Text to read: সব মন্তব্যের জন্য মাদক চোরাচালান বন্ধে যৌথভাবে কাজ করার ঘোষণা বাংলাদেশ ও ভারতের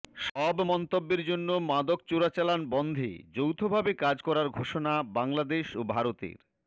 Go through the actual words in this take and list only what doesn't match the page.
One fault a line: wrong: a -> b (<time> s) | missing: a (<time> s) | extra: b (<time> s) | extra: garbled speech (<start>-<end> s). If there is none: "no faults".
no faults